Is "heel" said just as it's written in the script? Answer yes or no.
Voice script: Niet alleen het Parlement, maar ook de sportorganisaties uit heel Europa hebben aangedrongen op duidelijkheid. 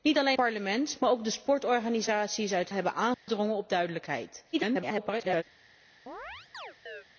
no